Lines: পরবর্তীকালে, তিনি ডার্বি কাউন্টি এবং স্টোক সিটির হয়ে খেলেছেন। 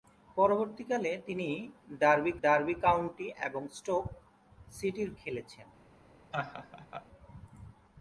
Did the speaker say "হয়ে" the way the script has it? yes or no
no